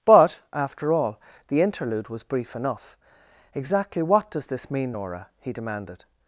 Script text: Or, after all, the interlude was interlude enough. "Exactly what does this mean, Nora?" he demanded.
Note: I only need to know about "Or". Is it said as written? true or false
false